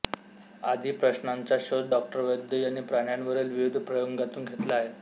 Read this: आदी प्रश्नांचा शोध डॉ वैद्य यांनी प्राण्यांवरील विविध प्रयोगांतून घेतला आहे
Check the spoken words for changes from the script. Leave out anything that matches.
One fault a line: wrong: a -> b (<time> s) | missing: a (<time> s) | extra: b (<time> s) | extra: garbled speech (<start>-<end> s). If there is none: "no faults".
no faults